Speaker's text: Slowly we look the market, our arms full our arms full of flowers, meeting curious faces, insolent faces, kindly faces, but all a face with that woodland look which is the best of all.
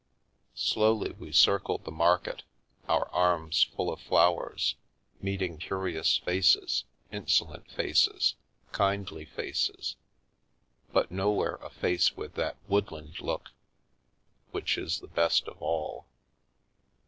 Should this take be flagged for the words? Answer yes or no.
yes